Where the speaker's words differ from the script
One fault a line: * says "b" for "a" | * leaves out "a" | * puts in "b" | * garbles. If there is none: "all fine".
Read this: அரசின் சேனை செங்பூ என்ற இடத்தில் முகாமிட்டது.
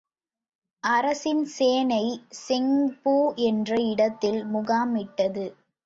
all fine